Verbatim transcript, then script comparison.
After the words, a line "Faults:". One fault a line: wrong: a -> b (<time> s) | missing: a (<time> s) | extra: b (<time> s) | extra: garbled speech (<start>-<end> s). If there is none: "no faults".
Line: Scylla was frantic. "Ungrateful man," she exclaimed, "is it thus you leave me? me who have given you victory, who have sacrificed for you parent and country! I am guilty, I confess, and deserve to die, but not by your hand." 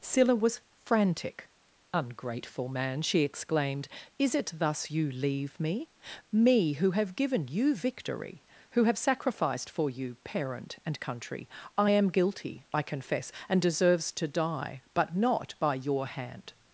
Scylla was frantic. "Ungrateful man," she exclaimed, "is it thus you leave me? me who have given you victory, who have sacrificed for you parent and country! I am guilty, I confess, and deserves to die, but not by your hand."
Faults:
wrong: deserve -> deserves (13.6 s)